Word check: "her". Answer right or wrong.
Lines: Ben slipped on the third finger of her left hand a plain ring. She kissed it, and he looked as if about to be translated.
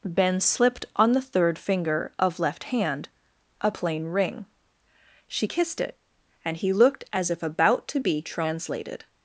wrong